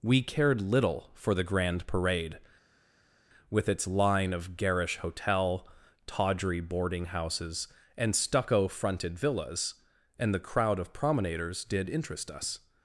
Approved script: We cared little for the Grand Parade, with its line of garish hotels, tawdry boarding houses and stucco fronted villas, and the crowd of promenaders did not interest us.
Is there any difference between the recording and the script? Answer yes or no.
yes